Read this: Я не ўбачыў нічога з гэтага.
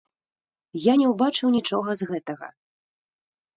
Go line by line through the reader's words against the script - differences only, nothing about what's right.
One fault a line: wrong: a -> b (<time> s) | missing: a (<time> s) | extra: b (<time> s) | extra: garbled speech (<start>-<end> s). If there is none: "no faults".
no faults